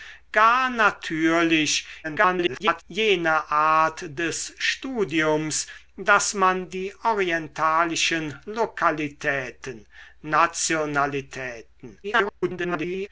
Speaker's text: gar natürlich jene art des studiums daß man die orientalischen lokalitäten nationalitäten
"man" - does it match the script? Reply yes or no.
yes